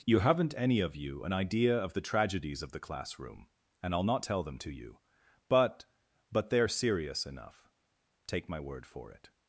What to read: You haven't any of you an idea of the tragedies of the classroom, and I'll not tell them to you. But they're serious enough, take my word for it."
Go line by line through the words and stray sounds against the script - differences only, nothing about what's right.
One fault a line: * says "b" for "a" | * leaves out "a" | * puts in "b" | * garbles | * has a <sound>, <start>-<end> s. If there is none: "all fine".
* puts in "But"